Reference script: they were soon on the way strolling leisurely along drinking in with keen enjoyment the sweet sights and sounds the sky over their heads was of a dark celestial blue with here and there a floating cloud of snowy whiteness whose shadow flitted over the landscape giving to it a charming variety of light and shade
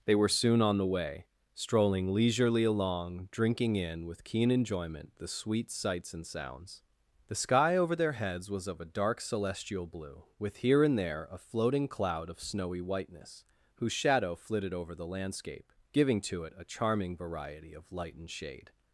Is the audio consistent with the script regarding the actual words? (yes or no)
yes